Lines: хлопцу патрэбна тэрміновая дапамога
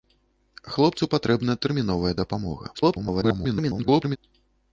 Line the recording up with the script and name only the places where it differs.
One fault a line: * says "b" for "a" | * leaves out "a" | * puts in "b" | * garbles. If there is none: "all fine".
* garbles